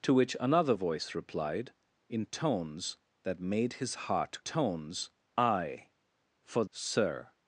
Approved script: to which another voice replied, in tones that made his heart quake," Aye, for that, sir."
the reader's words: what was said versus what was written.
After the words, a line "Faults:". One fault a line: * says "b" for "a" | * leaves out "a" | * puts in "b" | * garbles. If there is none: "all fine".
to which another voice replied, in tones that made his heart tones," Aye, for sir."
Faults:
* says "tones" for "quake"
* leaves out "that"